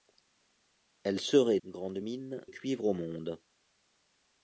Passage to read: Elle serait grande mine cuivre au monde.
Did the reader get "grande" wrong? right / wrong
right